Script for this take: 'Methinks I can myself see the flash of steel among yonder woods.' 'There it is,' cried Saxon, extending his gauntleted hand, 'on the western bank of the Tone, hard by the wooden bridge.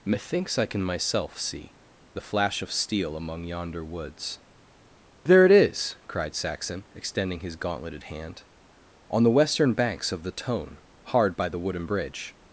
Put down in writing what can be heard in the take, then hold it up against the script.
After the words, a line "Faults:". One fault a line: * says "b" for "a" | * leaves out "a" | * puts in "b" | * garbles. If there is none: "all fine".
'Methinks I can myself see the flash of steel among yonder woods.' 'There it is,' cried Saxon, extending his gauntleted hand, 'on the western banks of the Tone, hard by the wooden bridge.
Faults:
* says "banks" for "bank"